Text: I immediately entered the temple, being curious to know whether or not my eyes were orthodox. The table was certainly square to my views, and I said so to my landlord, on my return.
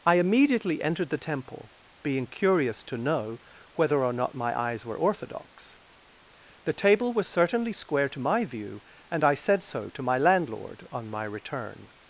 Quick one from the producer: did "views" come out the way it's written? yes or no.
no